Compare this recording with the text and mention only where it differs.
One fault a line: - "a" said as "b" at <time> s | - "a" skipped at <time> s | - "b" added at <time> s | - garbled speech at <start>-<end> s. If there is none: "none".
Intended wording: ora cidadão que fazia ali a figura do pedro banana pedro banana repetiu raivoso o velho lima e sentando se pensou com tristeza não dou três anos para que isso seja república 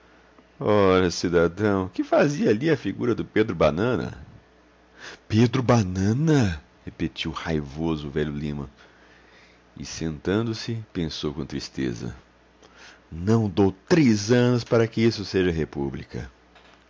none